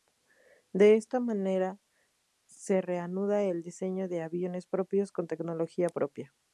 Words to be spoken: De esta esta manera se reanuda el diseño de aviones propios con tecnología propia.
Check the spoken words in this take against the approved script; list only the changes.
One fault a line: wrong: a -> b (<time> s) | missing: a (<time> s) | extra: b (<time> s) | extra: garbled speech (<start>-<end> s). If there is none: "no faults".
missing: esta (1.2 s)